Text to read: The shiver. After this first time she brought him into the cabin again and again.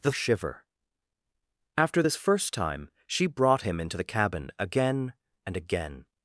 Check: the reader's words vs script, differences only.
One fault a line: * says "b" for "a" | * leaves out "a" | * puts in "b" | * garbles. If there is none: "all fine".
all fine